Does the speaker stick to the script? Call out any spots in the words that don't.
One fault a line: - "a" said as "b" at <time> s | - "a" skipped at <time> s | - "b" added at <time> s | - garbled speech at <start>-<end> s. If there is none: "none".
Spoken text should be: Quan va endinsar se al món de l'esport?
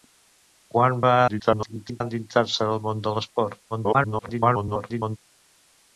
- garbled speech at 1.3-2.0 s
- garbled speech at 3.7-5.2 s